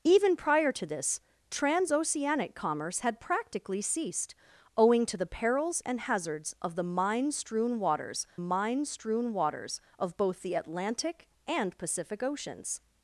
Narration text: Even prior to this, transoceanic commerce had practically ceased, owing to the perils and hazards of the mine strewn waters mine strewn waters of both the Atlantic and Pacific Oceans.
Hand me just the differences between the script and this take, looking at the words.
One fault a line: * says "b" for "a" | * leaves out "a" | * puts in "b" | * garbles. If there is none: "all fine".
all fine